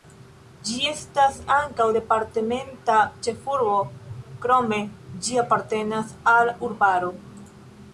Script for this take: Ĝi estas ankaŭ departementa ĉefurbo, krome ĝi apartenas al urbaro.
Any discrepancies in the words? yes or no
no